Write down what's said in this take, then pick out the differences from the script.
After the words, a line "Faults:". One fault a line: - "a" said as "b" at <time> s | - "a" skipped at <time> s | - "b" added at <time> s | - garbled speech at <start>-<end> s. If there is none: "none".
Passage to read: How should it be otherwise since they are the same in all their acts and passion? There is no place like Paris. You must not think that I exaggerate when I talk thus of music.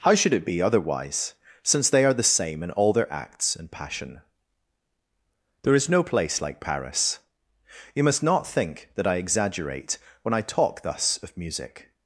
How should it be otherwise since they are the same in all their acts and passion? There is no place like Paris. You must not think that I exaggerate when I talk thus of music.
Faults:
none